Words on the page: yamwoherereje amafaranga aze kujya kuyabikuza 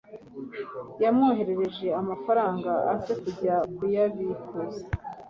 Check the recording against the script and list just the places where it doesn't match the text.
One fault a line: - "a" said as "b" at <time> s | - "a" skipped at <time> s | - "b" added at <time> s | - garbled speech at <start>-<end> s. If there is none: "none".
none